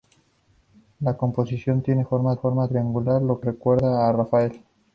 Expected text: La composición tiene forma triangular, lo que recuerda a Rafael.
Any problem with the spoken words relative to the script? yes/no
yes